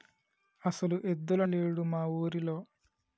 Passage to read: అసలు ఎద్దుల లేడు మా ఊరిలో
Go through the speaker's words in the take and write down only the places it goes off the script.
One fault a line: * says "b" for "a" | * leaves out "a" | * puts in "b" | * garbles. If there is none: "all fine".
all fine